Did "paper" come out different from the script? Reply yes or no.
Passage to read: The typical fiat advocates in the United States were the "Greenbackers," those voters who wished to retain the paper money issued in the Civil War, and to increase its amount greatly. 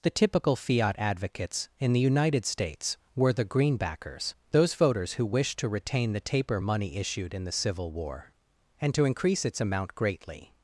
yes